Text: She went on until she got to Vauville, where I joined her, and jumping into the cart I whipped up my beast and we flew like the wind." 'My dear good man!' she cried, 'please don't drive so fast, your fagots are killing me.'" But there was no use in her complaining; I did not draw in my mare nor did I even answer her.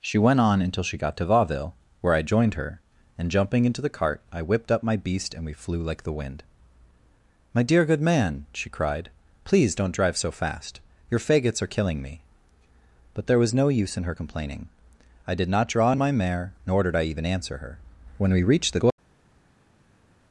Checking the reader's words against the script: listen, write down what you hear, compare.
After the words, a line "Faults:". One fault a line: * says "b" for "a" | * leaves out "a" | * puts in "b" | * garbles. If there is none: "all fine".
She went on until she got to Vauville, where I joined her, and jumping into the cart I whipped up my beast and we flew like the wind." 'My dear good man!' she cried, 'please don't drive so fast, your fagots are killing me.'" But there was no use in her complaining; I did not draw in my mare nor did I even answer her. When we reached the
Faults:
* puts in "When we reached the"